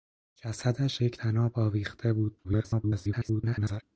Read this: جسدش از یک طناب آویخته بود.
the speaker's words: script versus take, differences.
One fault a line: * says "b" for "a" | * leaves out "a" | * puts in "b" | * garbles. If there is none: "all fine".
* leaves out "از"
* garbles